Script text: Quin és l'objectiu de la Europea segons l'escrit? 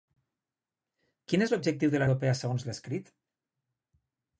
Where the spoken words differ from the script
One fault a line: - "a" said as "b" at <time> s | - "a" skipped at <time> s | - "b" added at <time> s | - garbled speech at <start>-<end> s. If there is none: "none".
none